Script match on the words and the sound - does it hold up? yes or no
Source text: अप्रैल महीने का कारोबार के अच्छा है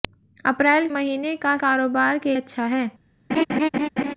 no